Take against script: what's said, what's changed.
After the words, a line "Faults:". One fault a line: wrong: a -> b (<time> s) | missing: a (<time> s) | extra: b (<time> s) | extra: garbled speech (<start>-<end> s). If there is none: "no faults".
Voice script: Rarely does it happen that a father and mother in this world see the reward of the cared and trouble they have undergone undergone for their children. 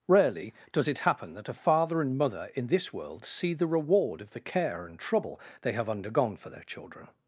Rarely does it happen that a father and mother in this world see the reward of the care and trouble they have undergone for their children.
Faults:
wrong: cared -> care (4.4 s)
missing: undergone (6.4 s)